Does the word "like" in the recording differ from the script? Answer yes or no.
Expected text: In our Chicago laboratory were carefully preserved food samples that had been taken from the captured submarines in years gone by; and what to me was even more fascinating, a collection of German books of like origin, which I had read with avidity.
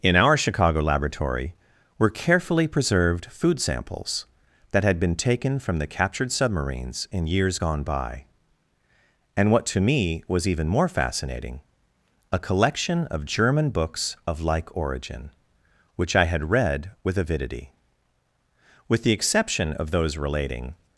no